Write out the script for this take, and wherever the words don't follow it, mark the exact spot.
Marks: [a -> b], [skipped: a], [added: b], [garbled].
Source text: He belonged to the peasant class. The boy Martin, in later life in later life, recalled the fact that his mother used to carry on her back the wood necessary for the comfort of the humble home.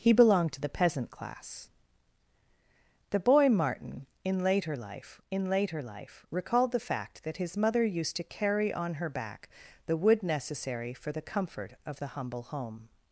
He belonged to the peasant class. The boy Martin, in later life in later life, recalled the fact that his mother used to carry on her back the wood necessary for the comfort of the humble home.